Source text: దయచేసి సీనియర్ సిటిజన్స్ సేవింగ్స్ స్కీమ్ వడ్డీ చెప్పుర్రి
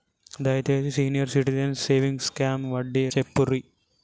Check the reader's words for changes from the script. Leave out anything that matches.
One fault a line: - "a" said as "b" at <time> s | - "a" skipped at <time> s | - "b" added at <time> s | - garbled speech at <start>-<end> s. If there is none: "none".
none